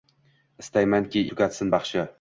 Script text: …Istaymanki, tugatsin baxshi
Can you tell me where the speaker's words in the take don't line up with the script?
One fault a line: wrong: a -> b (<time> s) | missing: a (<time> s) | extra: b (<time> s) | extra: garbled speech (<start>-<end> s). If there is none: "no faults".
no faults